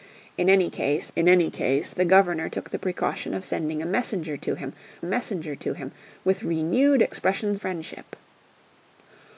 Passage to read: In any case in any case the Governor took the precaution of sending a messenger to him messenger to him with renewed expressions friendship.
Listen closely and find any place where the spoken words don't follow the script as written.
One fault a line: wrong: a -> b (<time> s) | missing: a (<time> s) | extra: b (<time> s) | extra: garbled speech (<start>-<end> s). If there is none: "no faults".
no faults